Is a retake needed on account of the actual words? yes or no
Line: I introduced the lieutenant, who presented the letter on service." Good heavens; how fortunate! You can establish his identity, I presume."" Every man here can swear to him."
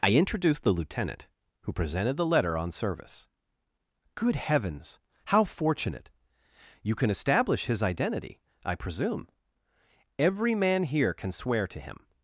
no